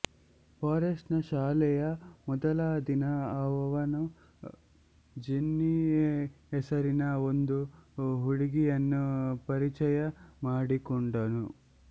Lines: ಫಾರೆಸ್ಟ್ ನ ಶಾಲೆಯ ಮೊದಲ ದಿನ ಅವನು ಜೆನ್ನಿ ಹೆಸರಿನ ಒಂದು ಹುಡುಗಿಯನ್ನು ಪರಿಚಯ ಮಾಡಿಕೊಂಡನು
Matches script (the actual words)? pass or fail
pass